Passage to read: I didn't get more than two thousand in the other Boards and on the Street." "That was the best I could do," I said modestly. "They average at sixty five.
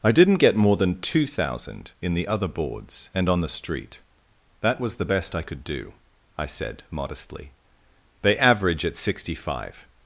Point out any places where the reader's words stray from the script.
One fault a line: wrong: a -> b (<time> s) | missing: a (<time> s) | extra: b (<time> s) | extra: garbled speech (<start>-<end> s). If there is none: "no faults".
no faults